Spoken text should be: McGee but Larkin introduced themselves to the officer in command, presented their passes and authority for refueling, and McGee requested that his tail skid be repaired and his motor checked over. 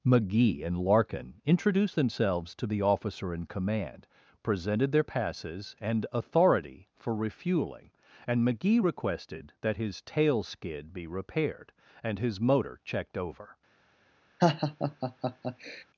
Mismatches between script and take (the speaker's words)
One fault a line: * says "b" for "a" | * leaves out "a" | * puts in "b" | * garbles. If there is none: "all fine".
* says "and" for "but"